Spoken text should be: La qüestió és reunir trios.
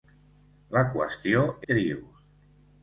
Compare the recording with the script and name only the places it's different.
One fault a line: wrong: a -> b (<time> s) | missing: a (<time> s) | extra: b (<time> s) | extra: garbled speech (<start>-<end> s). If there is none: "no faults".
missing: és reunir (1.4 s)